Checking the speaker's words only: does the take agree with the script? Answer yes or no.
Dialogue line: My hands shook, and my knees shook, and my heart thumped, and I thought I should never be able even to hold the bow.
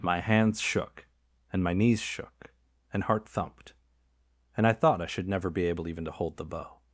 no